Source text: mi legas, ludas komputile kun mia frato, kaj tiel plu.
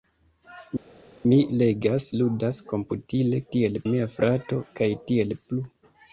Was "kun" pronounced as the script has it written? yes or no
no